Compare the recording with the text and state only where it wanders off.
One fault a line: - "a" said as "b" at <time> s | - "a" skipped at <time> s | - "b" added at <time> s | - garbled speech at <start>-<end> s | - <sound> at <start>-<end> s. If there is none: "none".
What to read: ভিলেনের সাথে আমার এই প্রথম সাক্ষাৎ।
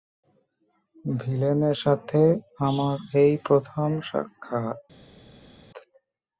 none